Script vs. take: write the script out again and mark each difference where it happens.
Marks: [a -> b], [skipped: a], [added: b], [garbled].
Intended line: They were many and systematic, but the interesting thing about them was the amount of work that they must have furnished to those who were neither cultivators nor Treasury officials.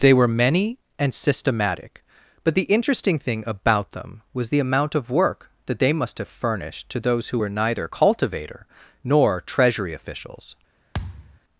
They were many and systematic, but the interesting thing about them was the amount of work that they must have furnished to those who were neither [cultivators -> cultivator] nor Treasury officials.